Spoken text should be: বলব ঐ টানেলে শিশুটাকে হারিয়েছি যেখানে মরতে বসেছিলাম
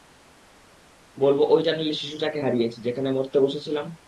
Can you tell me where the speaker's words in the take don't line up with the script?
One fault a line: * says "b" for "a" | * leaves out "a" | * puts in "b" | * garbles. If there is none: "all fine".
all fine